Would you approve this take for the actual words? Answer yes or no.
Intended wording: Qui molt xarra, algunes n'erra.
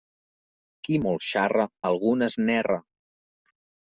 yes